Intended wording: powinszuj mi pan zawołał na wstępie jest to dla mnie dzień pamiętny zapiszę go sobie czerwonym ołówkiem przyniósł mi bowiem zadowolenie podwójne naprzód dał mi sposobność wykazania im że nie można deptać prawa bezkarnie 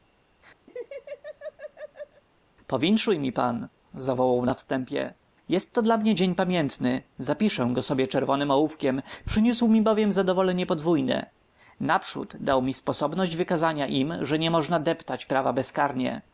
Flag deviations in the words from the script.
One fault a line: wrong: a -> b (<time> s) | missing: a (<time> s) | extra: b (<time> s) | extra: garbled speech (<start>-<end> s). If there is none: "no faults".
no faults